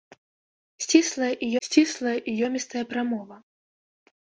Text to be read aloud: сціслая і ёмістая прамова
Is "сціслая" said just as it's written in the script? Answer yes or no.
yes